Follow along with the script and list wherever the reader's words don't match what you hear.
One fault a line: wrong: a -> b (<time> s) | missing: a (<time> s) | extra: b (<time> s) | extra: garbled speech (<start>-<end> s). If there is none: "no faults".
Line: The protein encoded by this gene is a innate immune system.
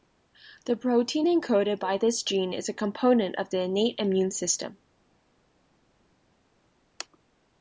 extra: component of the (2.7 s)